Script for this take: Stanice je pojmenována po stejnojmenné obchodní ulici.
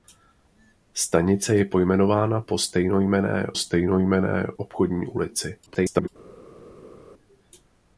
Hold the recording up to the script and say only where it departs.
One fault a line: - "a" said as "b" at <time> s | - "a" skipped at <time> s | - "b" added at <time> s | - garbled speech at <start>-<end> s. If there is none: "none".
- "stejnojmenné" added at 3.5 s
- garbled speech at 5.7-6.1 s